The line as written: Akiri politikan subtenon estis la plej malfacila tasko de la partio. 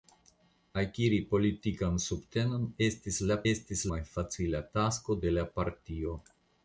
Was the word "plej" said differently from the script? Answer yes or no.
yes